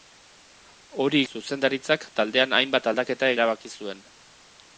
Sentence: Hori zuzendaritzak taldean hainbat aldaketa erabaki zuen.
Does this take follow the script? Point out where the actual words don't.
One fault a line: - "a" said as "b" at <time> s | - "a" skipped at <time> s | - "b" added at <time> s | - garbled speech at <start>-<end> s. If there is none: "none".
none